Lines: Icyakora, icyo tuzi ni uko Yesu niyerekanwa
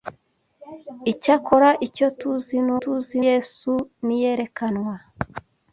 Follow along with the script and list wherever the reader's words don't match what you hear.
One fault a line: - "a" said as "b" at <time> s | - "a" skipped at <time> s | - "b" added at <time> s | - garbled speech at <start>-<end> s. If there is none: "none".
- "uko" said as "tuzi" at 2.8 s